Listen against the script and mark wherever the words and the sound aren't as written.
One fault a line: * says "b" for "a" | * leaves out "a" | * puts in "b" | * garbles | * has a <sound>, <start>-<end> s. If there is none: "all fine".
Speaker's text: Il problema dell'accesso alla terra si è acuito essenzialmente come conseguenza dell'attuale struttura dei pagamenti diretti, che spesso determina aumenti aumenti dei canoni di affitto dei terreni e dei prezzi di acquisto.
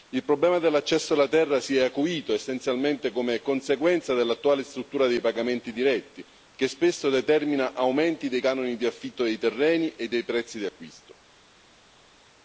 * leaves out "aumenti"